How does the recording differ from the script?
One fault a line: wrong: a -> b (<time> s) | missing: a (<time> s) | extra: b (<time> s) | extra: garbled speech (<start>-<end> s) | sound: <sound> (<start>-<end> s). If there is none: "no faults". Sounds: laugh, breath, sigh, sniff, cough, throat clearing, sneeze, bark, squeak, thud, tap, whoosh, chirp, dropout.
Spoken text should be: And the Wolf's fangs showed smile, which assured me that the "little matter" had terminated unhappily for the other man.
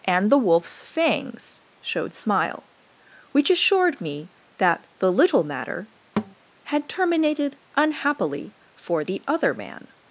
sound: thud (6.2-6.3 s)